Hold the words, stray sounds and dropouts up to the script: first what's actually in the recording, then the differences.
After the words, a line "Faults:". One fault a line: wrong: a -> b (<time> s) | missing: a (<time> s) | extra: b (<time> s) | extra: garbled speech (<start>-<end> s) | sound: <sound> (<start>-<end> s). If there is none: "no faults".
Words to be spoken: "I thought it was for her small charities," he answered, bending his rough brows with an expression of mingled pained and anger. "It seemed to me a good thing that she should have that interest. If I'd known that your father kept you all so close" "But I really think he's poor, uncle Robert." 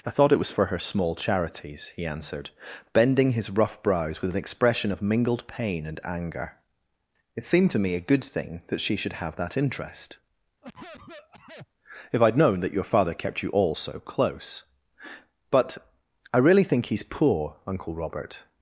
"I thought it was for her small charities," he answered, bending his rough brows with an expression of mingled pain and anger. "It seemed to me a good thing that she should have that interest. If I'd known that your father kept you all so close" "But I really think he's poor, uncle Robert."
Faults:
wrong: pained -> pain (5.5 s)
sound: cough (10.6-11.7 s)